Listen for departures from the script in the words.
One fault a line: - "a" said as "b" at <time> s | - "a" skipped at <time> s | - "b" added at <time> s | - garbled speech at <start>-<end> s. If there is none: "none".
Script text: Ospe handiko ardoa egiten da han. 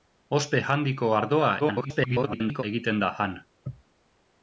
- garbled speech at 1.6-2.6 s